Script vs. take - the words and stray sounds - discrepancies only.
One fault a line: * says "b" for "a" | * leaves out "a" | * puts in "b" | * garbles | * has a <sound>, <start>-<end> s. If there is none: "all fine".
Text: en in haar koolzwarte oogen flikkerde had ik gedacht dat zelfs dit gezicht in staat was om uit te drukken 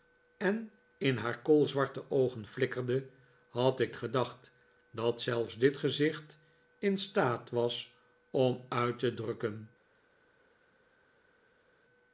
all fine